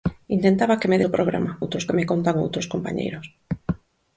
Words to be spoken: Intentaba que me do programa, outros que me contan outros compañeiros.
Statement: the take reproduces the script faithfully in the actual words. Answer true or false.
true